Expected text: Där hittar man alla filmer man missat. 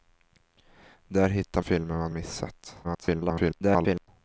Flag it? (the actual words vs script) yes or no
yes